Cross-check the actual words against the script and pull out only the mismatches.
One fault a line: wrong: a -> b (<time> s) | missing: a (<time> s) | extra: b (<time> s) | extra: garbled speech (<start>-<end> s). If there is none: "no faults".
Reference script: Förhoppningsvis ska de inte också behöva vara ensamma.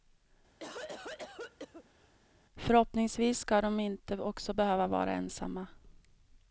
no faults